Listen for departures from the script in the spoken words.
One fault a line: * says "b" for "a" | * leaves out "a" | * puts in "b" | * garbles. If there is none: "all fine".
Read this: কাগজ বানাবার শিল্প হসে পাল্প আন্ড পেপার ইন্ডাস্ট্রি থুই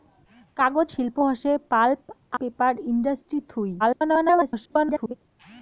* leaves out "বানাবার"
* leaves out "আন্ড"
* garbles